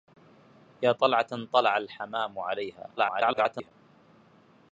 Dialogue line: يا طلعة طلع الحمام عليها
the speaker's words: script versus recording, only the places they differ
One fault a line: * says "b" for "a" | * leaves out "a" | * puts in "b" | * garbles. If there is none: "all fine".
* garbles